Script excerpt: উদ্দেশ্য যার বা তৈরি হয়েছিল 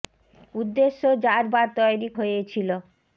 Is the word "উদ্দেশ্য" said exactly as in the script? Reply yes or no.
yes